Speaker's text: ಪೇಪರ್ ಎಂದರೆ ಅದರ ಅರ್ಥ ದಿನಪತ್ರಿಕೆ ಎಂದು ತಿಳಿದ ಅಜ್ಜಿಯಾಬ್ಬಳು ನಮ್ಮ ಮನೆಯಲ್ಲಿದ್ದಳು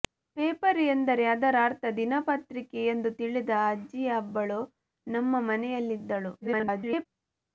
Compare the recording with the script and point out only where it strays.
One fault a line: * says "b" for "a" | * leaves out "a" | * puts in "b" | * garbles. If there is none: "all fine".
* garbles